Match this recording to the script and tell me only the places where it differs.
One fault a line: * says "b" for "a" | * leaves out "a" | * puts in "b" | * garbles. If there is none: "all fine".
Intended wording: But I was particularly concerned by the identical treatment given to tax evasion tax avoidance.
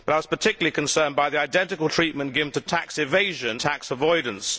all fine